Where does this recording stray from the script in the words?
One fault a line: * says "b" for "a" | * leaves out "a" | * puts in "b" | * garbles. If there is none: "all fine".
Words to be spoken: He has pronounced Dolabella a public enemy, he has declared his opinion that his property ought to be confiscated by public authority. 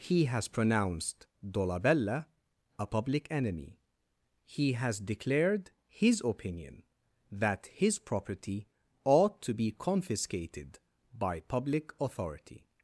all fine